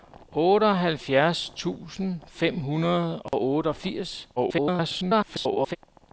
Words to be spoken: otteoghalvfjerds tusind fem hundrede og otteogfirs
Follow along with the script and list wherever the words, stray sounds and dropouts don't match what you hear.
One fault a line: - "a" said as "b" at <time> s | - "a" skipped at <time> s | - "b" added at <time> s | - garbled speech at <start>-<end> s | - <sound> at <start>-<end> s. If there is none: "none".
- dropout at 3.3-3.3 s
- garbled speech at 4.4-5.8 s